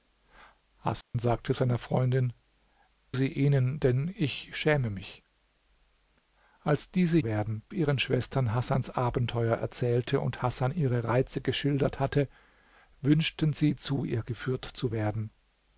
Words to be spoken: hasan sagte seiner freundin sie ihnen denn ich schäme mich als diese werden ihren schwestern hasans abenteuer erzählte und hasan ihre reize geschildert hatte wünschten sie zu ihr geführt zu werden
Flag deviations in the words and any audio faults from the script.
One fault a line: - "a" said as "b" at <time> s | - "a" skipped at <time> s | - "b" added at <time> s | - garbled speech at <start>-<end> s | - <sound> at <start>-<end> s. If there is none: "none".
- dropout at 1.0-1.1 s